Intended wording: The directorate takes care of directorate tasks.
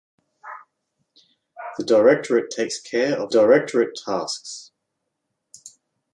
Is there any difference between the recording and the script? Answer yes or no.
no